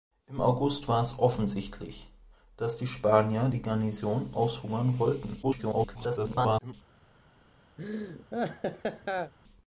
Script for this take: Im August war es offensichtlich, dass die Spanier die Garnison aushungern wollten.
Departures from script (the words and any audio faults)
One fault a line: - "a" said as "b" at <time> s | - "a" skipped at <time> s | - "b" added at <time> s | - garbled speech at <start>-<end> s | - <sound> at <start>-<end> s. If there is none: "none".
- garbled speech at 5.4-6.7 s
- laugh at 7.8-9.3 s